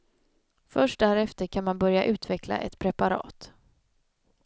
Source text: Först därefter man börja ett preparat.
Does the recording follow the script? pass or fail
fail